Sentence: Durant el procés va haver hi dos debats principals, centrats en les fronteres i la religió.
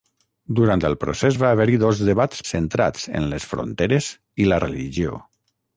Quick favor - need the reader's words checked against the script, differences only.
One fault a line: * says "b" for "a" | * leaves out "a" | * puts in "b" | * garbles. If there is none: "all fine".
* leaves out "principals"